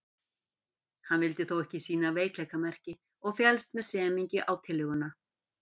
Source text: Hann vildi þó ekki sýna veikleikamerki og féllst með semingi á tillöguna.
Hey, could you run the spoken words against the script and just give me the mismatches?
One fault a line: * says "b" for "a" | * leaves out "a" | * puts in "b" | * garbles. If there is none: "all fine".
all fine